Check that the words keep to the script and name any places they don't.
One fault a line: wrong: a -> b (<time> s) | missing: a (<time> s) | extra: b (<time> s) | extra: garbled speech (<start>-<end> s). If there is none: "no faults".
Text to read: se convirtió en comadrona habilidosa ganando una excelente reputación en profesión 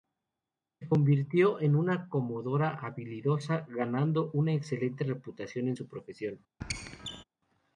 extra: una (1.8 s)
extra: su (5.7 s)